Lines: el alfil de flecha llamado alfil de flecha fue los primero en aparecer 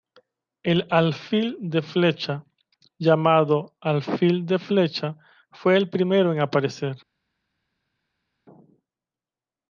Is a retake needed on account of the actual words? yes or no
yes